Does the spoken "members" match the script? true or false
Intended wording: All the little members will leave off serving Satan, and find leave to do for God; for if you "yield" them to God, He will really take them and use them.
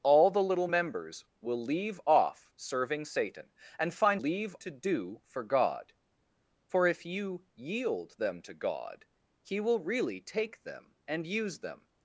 true